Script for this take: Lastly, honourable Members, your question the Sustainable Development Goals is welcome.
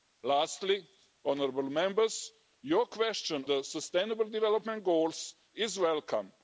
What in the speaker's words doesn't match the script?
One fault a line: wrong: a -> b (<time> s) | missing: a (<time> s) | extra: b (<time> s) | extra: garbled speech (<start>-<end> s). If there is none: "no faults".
no faults